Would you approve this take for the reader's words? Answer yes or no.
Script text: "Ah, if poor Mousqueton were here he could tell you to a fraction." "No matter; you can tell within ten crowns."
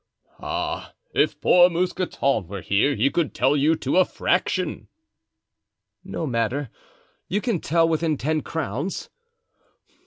yes